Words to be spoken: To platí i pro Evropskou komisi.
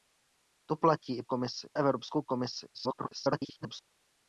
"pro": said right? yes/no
no